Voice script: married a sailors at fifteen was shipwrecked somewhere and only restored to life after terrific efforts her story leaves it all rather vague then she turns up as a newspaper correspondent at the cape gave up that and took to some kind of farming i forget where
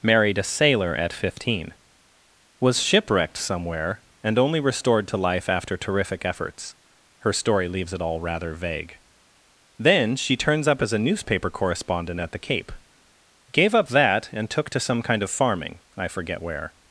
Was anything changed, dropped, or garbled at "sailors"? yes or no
yes